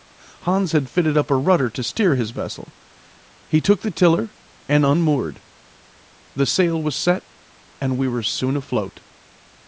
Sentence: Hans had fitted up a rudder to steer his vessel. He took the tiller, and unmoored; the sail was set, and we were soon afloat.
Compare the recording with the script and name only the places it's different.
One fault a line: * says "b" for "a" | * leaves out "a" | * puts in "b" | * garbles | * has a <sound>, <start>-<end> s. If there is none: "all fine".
all fine